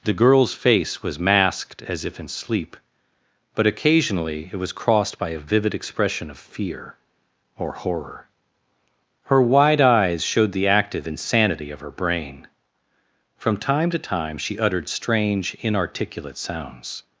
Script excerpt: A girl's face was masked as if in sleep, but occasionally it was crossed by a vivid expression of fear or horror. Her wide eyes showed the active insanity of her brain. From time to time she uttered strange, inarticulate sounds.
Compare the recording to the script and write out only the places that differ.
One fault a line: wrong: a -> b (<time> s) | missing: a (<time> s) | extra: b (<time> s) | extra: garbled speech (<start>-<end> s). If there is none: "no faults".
wrong: A -> The (0.0 s)